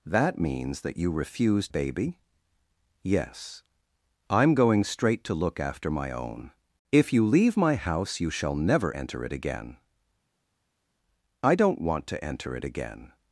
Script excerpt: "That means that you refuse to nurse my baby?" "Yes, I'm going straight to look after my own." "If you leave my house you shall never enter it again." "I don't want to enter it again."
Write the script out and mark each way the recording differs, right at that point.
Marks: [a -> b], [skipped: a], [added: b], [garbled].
"That means that you refuse [skipped: to nurse my] baby?" "Yes, I'm going straight to look after my own." "If you leave my house you shall never enter it again." "I don't want to enter it again."